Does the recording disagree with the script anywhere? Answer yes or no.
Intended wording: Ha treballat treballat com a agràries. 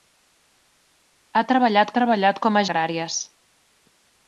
no